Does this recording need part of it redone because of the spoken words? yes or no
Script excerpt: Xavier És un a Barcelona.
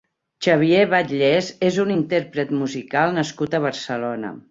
yes